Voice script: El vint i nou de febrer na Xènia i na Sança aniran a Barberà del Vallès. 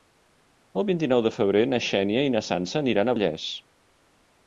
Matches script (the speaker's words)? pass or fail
fail